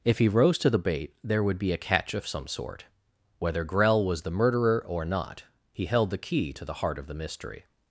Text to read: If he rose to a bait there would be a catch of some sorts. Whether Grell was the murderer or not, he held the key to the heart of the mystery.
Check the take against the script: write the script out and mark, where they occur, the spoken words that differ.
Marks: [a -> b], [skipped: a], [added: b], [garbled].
If he rose to [a -> the] bait there would be a catch of some [sorts. -> sort] Whether Grell was the murderer or not, he held the key to the heart of the mystery.